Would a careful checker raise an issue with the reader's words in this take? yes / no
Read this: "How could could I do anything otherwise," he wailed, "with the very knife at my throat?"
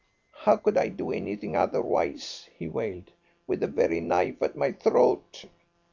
yes